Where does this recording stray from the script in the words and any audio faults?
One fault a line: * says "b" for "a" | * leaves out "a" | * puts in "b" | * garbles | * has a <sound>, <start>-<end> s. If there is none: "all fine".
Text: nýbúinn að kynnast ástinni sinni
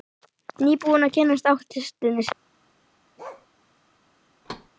* has a bark, 3.2-3.5 s
* has a thud, 4.4-4.7 s